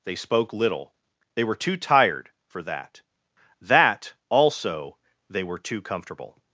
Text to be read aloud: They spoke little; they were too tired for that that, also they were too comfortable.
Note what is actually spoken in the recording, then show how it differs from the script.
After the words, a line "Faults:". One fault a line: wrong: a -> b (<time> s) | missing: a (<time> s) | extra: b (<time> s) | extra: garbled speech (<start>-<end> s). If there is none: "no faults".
They spoke little; they were too tired for that that, also they were too comfortable.
Faults:
no faults